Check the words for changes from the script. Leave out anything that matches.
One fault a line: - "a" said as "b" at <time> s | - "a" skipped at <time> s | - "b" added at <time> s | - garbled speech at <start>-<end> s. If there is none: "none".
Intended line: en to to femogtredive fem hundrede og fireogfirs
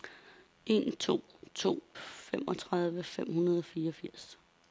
none